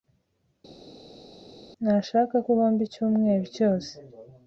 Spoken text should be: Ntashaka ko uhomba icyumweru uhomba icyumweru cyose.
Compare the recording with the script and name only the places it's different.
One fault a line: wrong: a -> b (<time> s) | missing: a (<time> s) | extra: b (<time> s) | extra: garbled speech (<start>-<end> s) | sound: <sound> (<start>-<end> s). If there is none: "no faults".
missing: uhomba icyumweru (3.4 s)